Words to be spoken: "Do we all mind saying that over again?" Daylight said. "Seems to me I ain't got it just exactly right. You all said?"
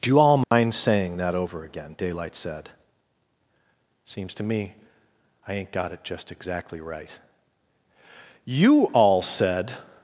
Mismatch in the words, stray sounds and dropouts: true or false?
true